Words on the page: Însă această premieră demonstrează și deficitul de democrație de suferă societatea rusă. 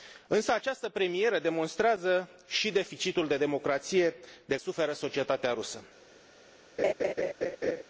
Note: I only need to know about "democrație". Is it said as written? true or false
true